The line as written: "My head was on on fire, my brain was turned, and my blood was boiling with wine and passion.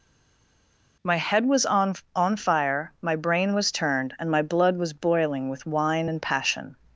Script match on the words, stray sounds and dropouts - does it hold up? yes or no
yes